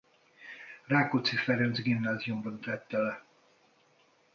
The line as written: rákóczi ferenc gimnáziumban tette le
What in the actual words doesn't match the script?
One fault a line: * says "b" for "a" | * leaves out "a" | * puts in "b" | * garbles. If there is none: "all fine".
all fine